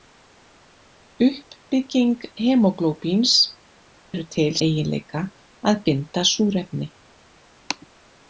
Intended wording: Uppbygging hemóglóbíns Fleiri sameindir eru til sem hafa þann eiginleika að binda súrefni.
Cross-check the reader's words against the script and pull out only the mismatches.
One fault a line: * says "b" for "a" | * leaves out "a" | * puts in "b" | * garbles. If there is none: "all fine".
* leaves out "Fleiri sameindir"
* leaves out "sem hafa þann"